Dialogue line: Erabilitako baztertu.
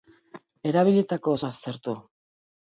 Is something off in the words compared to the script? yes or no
no